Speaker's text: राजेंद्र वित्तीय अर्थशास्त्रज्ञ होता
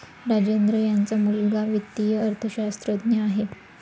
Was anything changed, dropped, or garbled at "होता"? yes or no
yes